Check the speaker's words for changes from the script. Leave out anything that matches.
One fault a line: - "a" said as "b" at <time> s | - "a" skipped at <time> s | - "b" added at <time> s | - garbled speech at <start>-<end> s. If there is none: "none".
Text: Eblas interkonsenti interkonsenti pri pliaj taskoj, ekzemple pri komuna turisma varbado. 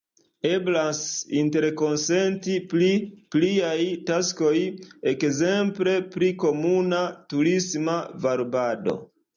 - "interkonsenti" skipped at 2.5 s